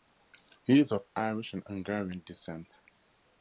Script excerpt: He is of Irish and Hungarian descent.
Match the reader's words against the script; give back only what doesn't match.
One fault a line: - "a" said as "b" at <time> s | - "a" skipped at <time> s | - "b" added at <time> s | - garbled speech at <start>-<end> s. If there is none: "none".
none